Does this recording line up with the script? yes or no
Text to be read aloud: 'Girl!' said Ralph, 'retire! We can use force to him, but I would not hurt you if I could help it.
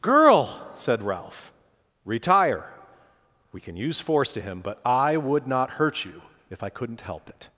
no